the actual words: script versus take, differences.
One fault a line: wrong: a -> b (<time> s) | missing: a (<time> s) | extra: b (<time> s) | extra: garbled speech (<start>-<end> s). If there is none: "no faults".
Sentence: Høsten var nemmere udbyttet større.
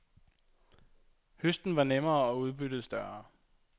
extra: og (2.2 s)